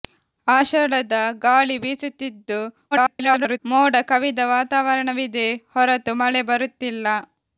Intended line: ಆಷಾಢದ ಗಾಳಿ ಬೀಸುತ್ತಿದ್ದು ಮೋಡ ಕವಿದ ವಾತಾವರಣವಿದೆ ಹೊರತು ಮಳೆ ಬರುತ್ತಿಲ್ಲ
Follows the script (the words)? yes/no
no